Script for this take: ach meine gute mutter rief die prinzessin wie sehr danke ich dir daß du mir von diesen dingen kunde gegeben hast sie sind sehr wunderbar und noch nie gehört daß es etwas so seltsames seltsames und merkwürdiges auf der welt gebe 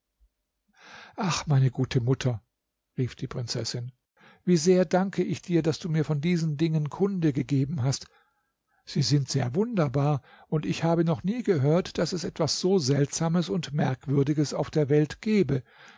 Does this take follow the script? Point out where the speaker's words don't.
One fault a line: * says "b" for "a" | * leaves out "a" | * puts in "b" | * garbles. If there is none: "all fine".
* puts in "ich habe"
* leaves out "seltsames"